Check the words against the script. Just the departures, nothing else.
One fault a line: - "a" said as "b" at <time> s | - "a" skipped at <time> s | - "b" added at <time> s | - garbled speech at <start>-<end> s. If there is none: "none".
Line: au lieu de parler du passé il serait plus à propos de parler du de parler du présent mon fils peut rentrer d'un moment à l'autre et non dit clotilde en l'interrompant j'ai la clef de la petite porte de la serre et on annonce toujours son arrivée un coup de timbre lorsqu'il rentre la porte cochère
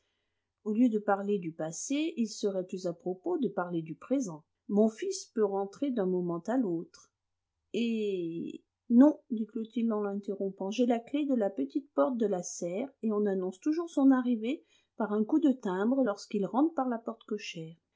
- "de parler du" skipped at 3.9 s
- "par" added at 15.0 s
- "par" added at 16.7 s